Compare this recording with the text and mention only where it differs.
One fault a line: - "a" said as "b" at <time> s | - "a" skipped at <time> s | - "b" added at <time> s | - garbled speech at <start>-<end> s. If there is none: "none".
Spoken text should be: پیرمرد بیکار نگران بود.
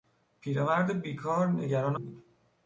none